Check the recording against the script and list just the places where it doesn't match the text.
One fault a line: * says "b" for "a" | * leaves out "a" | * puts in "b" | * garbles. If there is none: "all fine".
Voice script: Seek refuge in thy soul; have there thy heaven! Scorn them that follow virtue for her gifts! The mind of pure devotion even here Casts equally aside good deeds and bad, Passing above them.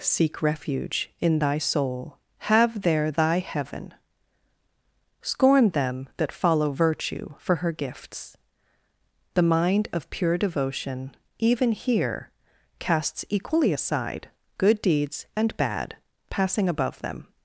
all fine